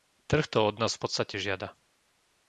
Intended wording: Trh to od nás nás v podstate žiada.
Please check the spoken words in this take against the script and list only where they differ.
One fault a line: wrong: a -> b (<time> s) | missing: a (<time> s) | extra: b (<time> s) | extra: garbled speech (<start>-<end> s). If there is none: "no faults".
missing: nás (1.0 s)